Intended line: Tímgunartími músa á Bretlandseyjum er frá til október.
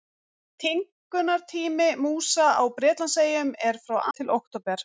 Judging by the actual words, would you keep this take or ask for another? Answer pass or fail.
pass